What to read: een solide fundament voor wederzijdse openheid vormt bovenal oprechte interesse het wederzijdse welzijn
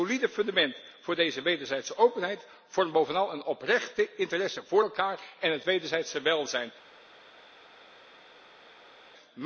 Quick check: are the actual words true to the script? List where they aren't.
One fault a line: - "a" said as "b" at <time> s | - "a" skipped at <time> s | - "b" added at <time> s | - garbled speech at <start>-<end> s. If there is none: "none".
- "deze" added at 1.1 s
- "een" added at 3.3 s
- "voor elkaar en" added at 4.6 s